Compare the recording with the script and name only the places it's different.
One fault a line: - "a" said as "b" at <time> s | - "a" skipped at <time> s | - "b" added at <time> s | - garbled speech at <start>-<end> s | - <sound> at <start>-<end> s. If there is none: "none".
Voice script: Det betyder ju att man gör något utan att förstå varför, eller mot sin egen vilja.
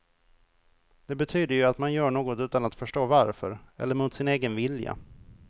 none